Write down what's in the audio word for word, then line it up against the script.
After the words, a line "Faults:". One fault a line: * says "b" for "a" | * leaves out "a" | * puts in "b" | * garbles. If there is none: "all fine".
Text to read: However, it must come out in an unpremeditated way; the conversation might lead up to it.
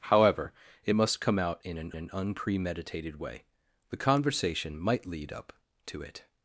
However, it must come out in an an unpremeditated way; the conversation might lead up to it.
Faults:
* puts in "an"